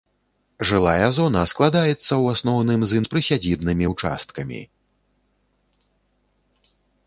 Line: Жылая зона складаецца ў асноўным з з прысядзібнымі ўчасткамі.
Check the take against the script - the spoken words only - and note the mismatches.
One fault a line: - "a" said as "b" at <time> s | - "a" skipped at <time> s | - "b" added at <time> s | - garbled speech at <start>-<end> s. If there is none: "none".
none